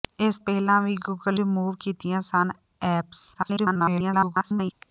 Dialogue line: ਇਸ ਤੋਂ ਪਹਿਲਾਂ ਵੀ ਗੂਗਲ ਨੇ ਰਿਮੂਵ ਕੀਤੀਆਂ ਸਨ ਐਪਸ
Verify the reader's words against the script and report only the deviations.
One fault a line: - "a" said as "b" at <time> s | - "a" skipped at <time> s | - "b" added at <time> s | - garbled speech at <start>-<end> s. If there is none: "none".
- "ਤੋਂ" skipped at 0.4 s
- "ਨੇ" skipped at 1.4 s
- garbled speech at 3.3-4.7 s